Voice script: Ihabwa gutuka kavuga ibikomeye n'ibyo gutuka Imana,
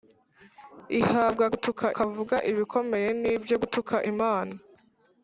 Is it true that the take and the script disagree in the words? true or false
false